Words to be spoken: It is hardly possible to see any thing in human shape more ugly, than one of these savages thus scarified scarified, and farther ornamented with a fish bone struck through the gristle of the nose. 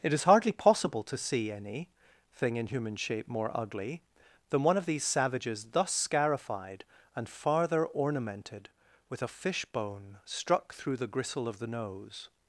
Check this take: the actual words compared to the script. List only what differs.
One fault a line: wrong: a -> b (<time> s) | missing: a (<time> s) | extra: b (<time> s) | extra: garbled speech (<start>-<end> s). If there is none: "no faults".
missing: scarified (6.9 s)